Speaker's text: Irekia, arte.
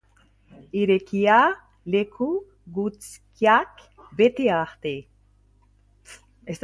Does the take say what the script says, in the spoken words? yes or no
no